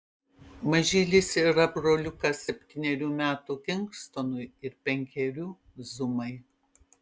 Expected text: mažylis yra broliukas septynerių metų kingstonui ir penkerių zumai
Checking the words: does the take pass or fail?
pass